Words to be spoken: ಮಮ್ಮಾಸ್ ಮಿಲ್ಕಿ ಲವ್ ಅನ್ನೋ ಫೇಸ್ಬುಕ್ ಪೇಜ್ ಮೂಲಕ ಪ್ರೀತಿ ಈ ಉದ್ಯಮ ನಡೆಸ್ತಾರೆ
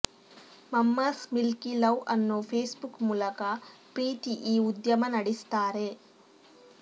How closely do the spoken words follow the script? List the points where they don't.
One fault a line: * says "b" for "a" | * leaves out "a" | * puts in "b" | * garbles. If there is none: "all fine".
* leaves out "ಪೇಜ್"